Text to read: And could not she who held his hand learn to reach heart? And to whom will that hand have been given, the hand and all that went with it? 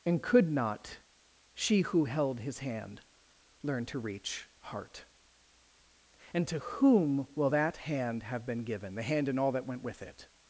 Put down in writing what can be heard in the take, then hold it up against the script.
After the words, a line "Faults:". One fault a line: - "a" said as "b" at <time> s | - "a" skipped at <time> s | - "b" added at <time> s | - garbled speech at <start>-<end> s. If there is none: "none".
And could not she who held his hand learn to reach heart? And to whom will that hand have been given, the hand and all that went with it?
Faults:
none